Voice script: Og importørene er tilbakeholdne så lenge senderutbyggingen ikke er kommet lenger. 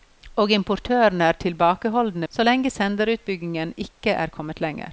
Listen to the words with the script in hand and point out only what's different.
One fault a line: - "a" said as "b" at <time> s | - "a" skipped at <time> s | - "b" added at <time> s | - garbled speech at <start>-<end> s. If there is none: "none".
none